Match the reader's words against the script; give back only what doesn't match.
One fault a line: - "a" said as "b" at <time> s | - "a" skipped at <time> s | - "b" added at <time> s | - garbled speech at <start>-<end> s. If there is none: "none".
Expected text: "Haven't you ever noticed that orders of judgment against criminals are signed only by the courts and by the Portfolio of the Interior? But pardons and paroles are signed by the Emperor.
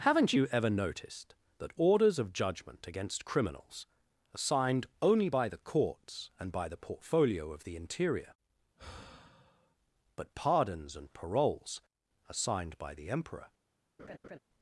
none